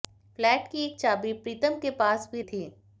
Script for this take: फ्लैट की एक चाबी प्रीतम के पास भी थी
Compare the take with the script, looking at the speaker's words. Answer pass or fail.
pass